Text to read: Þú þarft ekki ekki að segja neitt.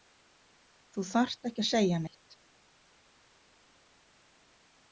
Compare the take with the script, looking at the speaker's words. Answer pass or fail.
fail